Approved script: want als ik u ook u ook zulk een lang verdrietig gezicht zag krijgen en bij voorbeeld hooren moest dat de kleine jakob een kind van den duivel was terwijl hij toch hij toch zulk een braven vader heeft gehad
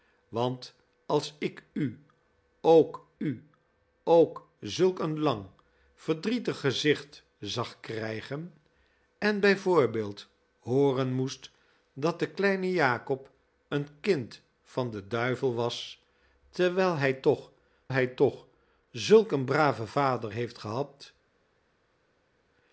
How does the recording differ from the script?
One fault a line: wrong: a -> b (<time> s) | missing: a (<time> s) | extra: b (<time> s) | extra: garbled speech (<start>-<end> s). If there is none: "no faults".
no faults